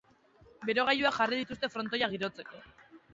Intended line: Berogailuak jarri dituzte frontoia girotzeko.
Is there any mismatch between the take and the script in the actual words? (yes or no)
no